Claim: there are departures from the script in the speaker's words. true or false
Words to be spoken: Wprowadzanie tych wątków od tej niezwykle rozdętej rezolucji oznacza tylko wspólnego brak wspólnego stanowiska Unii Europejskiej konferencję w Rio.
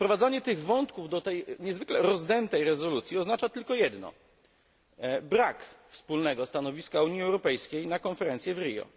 true